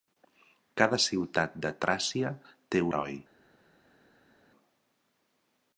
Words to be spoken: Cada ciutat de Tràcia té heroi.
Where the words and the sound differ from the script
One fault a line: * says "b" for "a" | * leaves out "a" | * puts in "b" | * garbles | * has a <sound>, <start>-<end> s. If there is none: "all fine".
all fine